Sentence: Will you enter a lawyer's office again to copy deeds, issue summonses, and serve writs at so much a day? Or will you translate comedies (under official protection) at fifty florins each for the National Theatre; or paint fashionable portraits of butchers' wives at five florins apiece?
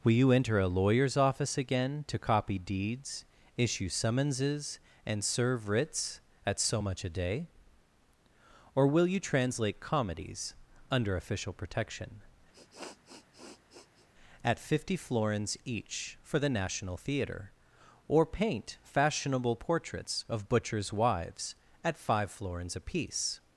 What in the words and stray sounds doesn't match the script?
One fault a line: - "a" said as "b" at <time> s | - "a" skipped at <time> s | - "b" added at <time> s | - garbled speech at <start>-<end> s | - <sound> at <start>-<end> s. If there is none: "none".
- sniff at 12.5-14.1 s